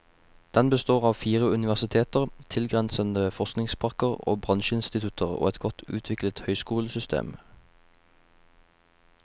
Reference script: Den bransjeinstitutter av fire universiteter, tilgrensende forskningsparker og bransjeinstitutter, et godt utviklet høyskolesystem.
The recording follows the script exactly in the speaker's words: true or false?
false